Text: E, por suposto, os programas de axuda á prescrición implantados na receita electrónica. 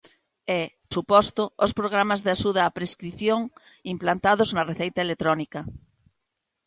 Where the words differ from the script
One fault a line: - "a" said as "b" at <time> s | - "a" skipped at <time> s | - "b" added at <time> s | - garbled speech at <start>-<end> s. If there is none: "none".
- "por" skipped at 0.6 s